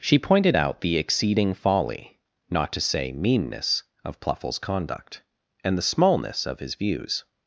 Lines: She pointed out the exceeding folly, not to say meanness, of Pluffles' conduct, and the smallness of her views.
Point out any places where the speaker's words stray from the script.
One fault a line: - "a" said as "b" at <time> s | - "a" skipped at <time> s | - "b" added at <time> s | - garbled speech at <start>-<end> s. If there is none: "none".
- "her" said as "his" at 6.6 s